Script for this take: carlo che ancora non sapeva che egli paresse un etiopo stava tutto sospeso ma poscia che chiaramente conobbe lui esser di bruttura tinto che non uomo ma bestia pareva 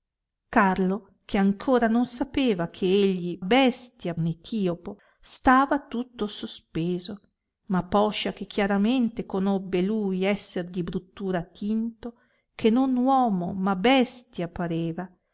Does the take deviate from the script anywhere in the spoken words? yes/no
yes